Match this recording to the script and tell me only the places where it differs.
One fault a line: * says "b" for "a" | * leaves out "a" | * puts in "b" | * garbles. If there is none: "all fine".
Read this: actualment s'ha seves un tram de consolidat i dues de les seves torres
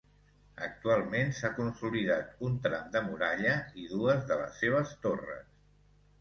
* says "consolidat" for "seves"
* says "muralla" for "consolidat"